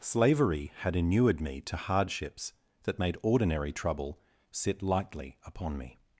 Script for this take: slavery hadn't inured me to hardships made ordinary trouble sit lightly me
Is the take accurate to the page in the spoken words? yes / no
no